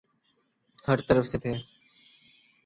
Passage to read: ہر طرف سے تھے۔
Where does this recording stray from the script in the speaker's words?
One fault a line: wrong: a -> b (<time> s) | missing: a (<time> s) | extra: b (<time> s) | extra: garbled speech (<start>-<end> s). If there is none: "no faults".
no faults